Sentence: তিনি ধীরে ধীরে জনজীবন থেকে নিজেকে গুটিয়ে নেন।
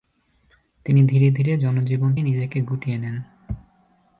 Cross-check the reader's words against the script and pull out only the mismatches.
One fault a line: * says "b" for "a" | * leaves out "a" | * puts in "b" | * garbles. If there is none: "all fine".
* leaves out "থেকে"